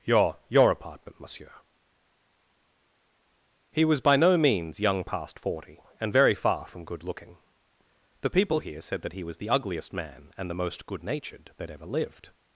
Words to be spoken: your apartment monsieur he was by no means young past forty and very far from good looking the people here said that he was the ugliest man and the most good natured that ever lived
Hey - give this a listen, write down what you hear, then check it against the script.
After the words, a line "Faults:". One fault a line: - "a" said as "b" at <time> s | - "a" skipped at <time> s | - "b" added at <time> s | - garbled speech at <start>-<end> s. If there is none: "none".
your your apartment monsieur he was by no means young past forty and very far from good looking the people here said that he was the ugliest man and the most good natured that ever lived
Faults:
- "your" added at 0.5 s